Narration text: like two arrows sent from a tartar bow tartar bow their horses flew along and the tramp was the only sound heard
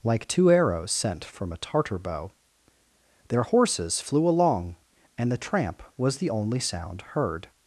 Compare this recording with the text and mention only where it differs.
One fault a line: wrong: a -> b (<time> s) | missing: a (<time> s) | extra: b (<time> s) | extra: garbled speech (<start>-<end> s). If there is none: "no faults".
missing: tartar bow (2.3 s)